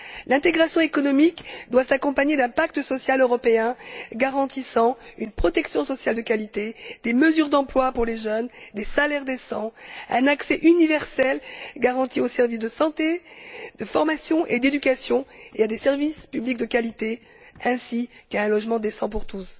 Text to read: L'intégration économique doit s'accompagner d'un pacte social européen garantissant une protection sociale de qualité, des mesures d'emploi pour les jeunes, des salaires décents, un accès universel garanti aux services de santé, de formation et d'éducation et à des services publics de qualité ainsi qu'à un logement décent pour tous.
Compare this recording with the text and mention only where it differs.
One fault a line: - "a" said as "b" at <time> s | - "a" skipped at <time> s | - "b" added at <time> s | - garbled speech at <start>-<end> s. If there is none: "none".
none